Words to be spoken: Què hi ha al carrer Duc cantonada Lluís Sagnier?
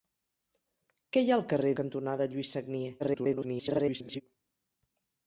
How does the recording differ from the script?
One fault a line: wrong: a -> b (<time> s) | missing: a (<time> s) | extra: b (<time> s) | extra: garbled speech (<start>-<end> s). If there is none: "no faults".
missing: Duc (1.8 s)
extra: garbled speech (3.0-4.2 s)